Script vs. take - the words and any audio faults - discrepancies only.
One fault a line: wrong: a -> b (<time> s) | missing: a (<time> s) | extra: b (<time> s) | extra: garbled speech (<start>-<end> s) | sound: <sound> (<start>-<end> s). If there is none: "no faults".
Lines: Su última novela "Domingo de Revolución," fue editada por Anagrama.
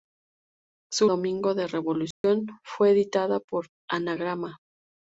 missing: última novela (1.1 s)
sound: dropout (2.1-2.2 s)